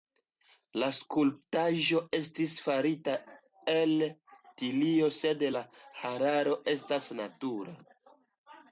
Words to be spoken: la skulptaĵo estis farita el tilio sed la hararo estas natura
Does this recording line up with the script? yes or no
yes